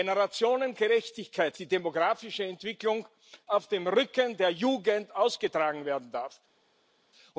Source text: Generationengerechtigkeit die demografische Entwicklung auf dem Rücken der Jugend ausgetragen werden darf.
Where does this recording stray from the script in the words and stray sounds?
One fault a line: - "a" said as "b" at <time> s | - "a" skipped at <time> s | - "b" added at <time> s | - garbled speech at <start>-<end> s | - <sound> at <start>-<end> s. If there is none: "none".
none